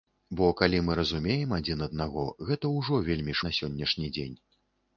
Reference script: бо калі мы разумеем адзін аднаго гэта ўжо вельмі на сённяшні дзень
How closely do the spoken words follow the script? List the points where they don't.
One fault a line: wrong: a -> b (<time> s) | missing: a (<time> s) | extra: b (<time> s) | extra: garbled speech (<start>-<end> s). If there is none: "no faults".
no faults